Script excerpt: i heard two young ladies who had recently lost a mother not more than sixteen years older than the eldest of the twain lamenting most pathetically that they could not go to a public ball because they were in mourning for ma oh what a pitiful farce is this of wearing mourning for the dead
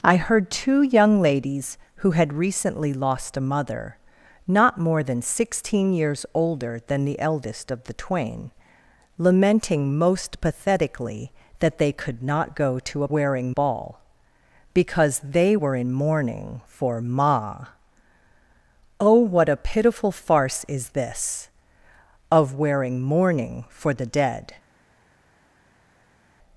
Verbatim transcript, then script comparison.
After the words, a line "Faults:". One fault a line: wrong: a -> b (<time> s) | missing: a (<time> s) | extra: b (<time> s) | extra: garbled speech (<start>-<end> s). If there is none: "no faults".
i heard two young ladies who had recently lost a mother not more than sixteen years older than the eldest of the twain lamenting most pathetically that they could not go to a wearing ball because they were in mourning for ma oh what a pitiful farce is this of wearing mourning for the dead
Faults:
wrong: public -> wearing (13.1 s)